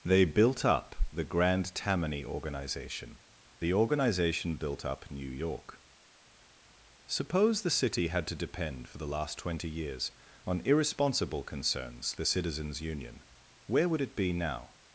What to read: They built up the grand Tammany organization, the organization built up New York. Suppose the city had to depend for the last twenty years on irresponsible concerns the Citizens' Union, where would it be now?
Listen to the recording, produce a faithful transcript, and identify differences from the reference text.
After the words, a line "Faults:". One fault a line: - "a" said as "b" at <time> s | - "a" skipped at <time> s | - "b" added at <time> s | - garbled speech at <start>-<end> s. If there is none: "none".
They built up the grand Tammany organization, the organization built up New York. Suppose the city had to depend for the last twenty years on irresponsible concerns the Citizens' Union, where would it be now?
Faults:
none